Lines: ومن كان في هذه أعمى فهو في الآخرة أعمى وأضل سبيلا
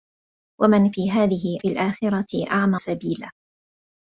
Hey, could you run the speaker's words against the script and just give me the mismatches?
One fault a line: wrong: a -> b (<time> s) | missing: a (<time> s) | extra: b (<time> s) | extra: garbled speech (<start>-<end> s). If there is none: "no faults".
missing: كان (0.9 s)
missing: أعمى فهو (1.6 s)
missing: وأضل (2.8 s)